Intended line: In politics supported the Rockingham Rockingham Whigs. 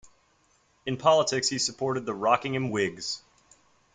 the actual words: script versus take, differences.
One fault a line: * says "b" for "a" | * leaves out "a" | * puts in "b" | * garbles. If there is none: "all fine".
* puts in "he"
* leaves out "Rockingham"